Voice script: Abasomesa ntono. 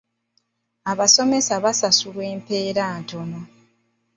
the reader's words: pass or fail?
fail